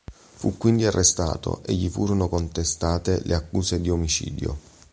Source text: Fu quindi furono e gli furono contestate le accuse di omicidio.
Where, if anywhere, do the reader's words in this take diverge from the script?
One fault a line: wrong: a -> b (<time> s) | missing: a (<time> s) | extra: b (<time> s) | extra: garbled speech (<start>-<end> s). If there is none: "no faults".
wrong: furono -> arrestato (0.9 s)